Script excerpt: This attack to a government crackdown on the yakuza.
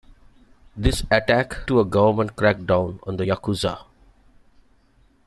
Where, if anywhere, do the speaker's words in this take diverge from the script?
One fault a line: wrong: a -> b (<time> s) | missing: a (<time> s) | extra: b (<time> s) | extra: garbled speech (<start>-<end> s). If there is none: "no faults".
no faults